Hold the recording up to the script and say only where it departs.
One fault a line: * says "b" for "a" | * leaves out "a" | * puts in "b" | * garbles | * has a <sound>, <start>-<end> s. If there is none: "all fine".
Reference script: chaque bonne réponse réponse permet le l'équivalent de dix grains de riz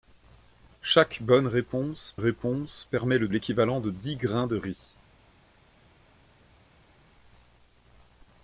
all fine